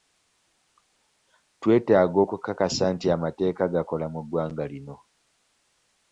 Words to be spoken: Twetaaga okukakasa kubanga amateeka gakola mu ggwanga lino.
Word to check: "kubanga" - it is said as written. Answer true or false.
false